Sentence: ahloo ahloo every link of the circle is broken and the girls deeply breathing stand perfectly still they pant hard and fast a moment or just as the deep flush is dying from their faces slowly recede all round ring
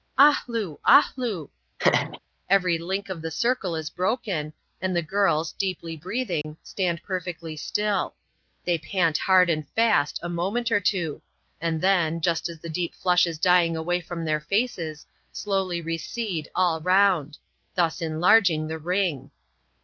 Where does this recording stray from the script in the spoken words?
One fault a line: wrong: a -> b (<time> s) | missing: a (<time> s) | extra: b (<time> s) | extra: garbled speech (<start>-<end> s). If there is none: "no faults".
extra: two and then (10.8 s)
extra: away (13.8 s)
extra: thus enlarging the (17.8 s)